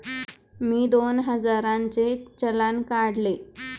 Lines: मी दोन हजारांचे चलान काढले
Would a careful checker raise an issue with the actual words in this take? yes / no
no